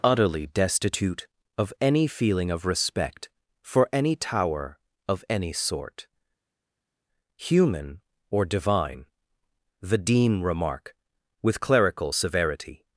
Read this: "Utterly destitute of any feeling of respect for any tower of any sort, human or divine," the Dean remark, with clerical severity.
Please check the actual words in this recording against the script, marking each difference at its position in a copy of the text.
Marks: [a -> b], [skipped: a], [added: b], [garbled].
"Utterly destitute of any feeling of respect for any tower of any sort, human or divine," the Dean remark, with clerical severity.